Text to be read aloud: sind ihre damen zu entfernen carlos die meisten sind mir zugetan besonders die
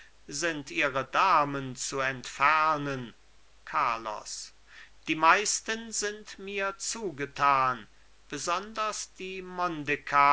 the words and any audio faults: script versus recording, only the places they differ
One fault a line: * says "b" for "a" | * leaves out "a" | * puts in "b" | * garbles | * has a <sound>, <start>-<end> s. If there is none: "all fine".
all fine